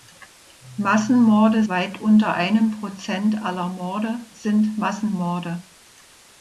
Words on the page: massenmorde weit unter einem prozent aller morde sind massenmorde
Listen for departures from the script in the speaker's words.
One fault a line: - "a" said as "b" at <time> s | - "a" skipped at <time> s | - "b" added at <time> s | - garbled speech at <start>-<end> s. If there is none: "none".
none